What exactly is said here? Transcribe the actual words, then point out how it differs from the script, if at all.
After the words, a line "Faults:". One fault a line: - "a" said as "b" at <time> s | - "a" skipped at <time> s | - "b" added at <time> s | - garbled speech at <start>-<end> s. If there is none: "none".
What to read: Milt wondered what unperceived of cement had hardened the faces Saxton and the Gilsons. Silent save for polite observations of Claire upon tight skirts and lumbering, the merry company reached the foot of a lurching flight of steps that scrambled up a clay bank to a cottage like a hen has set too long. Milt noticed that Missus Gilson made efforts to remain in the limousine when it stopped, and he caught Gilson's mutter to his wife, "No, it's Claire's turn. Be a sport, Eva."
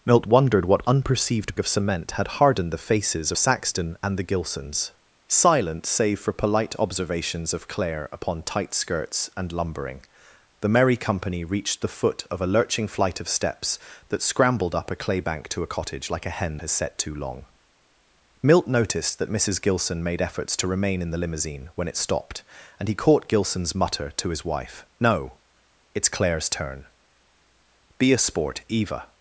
Milt wondered what unperceived of cement had hardened the faces Saxton and the Gilsons. Silent save for polite observations of Claire upon tight skirts and lumbering, the merry company reached the foot of a lurching flight of steps that scrambled up a clay bank to a cottage like a hen has set too long. Milt noticed that Missus Gilson made efforts to remain in the limousine when it stopped, and he caught Gilson's mutter to his wife, "No, it's Claire's turn. Be a sport, Eva."
Faults:
none